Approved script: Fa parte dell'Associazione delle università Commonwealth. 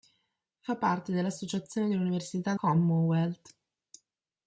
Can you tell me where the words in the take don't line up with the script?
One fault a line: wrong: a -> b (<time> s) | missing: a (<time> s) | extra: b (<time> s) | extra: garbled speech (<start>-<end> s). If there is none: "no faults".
no faults